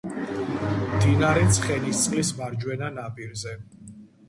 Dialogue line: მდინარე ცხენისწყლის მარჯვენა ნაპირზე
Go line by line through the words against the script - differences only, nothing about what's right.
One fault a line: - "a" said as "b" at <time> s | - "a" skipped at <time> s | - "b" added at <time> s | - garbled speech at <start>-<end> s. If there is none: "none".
none